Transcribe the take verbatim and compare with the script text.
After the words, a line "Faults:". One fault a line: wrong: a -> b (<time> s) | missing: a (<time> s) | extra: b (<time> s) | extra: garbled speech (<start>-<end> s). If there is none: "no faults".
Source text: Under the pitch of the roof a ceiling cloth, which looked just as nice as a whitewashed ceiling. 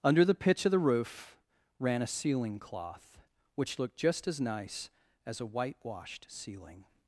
Under the pitch of the roof ran a ceiling cloth, which looked just as nice as a whitewashed ceiling.
Faults:
extra: ran (1.8 s)